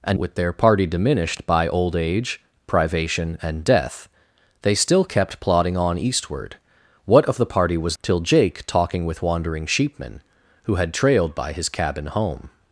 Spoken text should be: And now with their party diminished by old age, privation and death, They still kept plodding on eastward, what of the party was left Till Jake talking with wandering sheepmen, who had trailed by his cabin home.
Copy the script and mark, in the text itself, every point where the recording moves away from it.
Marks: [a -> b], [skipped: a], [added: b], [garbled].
And [skipped: now] with their party diminished by old age, privation and death, They still kept plodding on eastward, what of the party was [skipped: left] Till Jake talking with wandering sheepmen, who had trailed by his cabin home.